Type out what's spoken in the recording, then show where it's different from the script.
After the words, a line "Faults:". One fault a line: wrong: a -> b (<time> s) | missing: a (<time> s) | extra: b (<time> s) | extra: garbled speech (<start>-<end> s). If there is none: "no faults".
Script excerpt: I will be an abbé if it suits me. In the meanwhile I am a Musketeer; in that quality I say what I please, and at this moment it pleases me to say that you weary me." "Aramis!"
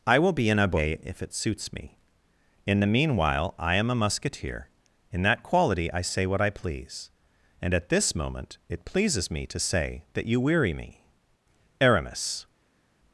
I will be an abbé if it suits me. In the meanwhile I am a Musketeer; in that quality I say what I please, and at this moment it pleases me to say that you weary me." "Aramis!"
Faults:
no faults